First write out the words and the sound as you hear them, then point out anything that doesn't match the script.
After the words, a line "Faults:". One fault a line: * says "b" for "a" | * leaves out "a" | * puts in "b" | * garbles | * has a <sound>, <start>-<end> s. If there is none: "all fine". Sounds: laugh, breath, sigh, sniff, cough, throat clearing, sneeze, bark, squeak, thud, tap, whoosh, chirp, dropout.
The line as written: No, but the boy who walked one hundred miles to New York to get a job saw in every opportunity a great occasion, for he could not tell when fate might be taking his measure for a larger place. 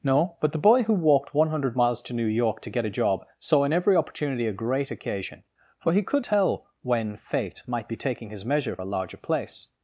No, but the boy who walked one hundred miles to New York to get a job saw in every opportunity a great occasion, for he could tell when fate might be taking his measure a larger place.
Faults:
* leaves out "not"
* leaves out "for"